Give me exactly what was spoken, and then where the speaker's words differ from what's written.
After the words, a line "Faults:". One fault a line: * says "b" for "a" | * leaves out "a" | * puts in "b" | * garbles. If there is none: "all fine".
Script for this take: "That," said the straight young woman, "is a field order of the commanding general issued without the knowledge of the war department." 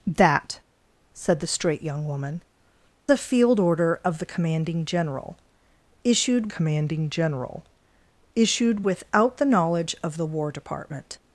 "That," said the straight young woman, "a field order of the commanding general issued commanding general issued without the knowledge of the war department."
Faults:
* leaves out "is"
* puts in "commanding general issued"